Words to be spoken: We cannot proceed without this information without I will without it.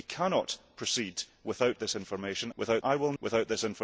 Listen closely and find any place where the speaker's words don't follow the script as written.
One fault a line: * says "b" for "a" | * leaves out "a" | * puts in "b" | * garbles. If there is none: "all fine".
all fine